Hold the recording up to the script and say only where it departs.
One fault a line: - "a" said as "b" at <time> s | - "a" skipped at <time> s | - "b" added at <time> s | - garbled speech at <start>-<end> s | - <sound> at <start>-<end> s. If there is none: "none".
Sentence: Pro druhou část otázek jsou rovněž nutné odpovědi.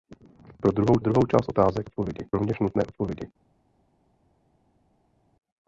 - "druhou" added at 1.0 s
- "jsou" said as "odpovědi" at 1.9 s